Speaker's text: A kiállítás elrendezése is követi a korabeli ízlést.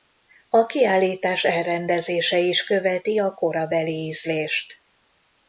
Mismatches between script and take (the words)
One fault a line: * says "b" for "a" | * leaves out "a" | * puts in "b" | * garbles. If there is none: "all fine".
all fine